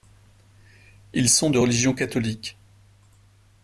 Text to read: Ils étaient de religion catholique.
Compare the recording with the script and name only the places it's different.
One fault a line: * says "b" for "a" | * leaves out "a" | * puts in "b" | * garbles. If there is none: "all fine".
* says "sont" for "étaient"